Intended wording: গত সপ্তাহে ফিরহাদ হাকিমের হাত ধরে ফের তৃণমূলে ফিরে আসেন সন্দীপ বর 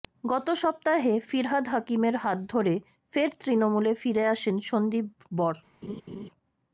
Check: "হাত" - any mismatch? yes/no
no